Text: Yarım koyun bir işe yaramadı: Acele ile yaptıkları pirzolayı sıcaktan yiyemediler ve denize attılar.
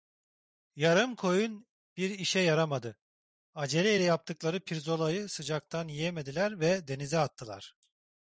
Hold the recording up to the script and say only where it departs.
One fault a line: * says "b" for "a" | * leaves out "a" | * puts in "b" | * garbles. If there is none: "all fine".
all fine